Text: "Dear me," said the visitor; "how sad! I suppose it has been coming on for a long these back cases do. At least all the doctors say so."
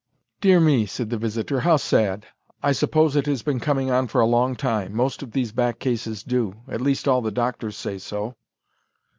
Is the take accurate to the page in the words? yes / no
no